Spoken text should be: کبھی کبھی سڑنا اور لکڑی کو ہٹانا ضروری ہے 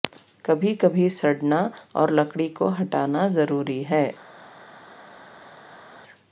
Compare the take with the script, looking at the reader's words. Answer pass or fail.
pass